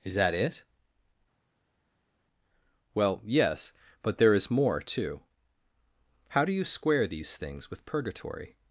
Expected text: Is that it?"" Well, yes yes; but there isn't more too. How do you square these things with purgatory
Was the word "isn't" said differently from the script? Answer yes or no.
yes